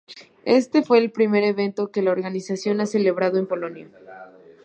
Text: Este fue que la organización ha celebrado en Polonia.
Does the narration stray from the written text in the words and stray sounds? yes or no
yes